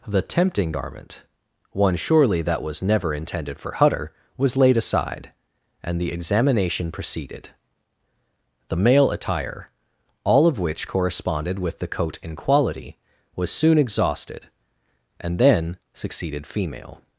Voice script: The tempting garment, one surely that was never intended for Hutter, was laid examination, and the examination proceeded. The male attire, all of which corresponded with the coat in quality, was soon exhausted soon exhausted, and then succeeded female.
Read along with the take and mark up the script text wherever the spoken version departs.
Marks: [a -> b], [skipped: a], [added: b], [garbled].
The tempting garment, one surely that was never intended for Hutter, was laid [examination, -> aside] and the examination proceeded. The male attire, all of which corresponded with the coat in quality, was soon exhausted [skipped: soon exhausted,] and then succeeded female.